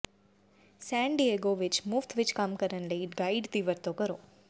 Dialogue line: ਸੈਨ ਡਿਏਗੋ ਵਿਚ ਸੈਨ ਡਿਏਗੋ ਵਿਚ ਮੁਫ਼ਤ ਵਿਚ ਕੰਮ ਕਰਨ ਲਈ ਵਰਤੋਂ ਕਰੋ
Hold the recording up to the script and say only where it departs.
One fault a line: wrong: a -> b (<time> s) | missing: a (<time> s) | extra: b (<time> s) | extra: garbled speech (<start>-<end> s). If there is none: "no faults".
missing: ਸੈਨ ਡਿਏਗੋ ਵਿਚ (1.8 s)
extra: ਗਾਈਡ ਦੀ (3.2 s)